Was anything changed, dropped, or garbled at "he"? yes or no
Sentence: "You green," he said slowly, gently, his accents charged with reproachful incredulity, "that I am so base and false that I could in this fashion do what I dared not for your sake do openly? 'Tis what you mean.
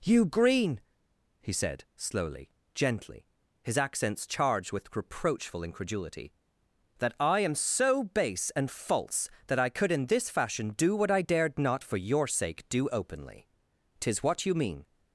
no